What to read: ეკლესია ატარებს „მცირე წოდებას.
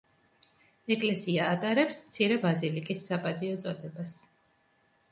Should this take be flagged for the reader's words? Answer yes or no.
yes